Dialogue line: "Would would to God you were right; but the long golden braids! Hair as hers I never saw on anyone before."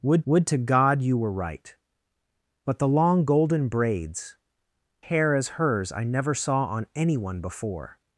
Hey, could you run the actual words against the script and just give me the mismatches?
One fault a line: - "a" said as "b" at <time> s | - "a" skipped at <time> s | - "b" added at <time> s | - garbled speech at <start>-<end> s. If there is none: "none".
none